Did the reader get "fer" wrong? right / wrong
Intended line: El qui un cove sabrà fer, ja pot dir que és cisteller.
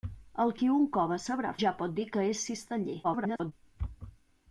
wrong